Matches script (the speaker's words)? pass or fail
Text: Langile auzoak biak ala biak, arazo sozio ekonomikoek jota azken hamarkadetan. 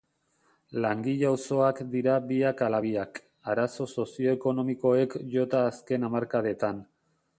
fail